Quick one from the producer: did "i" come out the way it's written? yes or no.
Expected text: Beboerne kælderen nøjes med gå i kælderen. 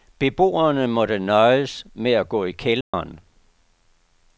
yes